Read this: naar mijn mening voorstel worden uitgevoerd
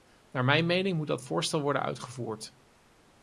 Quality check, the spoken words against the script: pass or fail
fail